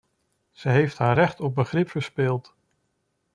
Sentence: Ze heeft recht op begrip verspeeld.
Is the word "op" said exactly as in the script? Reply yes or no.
yes